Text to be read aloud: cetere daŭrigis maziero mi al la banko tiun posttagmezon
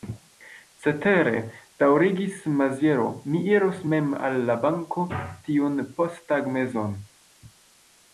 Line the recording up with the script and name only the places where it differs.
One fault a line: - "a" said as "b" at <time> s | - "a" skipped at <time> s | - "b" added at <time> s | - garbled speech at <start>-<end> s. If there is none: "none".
- "iros mem" added at 3.5 s